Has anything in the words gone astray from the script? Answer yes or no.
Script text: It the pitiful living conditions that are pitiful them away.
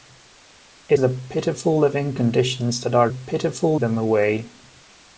no